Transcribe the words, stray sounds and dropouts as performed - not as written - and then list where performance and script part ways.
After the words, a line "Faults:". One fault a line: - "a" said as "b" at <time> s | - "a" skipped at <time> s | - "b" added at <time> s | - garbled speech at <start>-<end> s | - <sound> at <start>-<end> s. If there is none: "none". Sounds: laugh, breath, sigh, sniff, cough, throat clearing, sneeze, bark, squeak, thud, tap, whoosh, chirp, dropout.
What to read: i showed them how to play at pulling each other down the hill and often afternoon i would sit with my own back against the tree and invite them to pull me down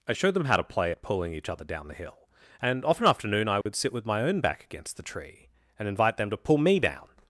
i showed them how to play at pulling each other down the hill and often afternoon i would sit with my own back against the tree and invite them to pull me down
Faults:
- dropout at 3.6-3.7 s